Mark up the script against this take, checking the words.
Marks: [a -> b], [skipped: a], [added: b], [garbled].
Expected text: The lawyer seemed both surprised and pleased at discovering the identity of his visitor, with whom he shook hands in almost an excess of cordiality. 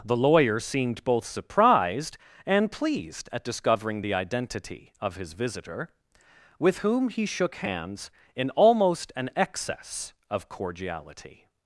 The lawyer seemed both surprised and pleased at discovering the identity of his visitor, with whom he shook hands in almost an excess of cordiality.